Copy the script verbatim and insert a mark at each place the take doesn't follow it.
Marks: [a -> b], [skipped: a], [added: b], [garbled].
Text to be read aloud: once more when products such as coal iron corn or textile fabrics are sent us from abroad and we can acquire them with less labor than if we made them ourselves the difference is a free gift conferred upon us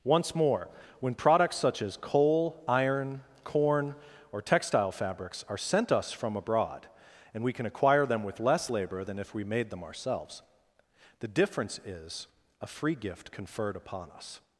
once more when products such as coal iron corn or textile fabrics are sent us from abroad and we can acquire them with less labor than if we made them ourselves the difference is a free gift conferred upon us